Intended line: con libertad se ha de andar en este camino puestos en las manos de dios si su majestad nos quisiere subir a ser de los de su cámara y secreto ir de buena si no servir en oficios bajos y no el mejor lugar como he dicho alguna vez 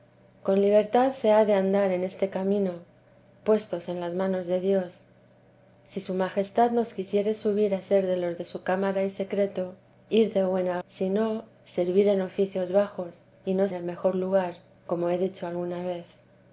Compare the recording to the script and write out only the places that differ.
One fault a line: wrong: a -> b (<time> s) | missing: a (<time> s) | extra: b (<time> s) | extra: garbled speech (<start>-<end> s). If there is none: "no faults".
no faults